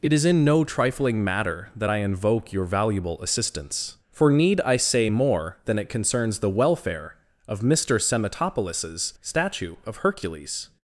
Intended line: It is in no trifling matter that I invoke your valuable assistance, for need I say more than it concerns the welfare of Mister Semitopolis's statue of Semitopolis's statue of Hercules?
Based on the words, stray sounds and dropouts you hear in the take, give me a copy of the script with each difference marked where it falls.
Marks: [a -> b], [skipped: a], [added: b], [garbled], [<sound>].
It is in no trifling matter that I invoke your valuable assistance, for need I say more than it concerns the welfare of Mister Semitopolis's statue of [skipped: Semitopolis's statue of] Hercules?